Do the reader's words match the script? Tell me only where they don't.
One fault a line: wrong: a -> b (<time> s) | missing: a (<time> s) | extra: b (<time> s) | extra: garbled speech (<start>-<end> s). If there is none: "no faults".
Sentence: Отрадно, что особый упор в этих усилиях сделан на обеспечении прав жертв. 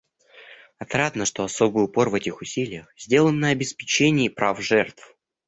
no faults